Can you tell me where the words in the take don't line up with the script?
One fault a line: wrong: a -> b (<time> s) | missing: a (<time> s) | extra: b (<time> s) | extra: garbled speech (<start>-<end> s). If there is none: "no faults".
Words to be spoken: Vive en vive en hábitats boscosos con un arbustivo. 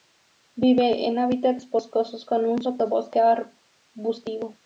missing: vive en (1.2 s)
extra: sotobosque (2.6 s)